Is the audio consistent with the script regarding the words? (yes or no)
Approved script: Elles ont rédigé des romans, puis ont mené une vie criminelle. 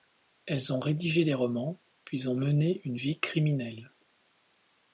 yes